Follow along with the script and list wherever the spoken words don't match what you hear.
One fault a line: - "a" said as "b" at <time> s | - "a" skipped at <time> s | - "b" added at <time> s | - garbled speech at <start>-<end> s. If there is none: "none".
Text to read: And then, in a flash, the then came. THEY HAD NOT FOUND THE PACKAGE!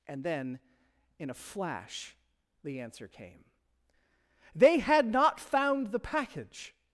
- "then" said as "answer" at 2.8 s